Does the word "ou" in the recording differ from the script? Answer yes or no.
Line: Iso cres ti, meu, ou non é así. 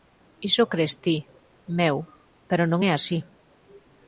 yes